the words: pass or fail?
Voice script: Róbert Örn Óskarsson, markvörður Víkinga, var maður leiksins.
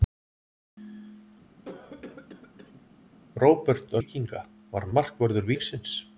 fail